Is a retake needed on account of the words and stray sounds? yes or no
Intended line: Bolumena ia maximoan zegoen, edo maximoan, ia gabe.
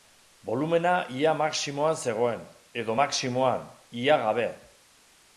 no